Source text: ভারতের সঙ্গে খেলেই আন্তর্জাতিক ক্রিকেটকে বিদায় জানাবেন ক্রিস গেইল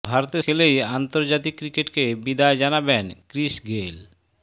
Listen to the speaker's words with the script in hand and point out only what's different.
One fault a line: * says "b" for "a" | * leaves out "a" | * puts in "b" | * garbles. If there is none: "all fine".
* leaves out "সঙ্গে"